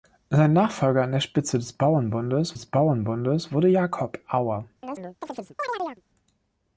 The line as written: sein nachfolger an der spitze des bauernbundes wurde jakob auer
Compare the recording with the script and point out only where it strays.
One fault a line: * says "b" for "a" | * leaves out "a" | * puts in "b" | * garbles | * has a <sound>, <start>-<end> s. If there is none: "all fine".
* puts in "des bauernbundes"
* has a chirp, 4.8-6.0 s